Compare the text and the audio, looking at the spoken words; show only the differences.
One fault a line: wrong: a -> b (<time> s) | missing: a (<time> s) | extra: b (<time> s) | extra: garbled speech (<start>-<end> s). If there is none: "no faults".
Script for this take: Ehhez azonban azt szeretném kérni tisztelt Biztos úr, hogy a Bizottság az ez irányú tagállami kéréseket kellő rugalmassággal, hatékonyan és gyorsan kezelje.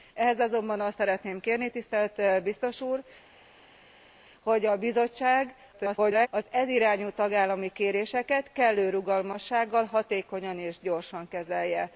extra: garbled speech (5.7-6.3 s)